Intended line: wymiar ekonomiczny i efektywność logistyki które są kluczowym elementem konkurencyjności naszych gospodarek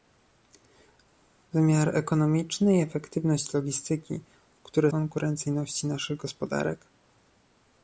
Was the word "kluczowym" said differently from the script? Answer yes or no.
yes